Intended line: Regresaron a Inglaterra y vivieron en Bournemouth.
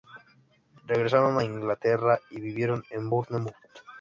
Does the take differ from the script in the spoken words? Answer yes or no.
no